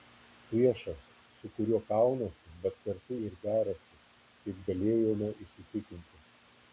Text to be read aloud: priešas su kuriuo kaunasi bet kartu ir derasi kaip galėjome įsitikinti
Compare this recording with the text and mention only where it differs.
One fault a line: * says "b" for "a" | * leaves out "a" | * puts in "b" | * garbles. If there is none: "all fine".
all fine